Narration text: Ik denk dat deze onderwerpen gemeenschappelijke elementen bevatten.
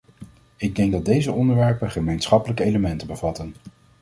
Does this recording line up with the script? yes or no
yes